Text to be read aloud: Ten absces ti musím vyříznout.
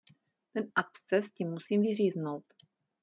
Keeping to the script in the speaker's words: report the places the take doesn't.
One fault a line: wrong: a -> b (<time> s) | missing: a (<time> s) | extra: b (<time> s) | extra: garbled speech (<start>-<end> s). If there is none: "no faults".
no faults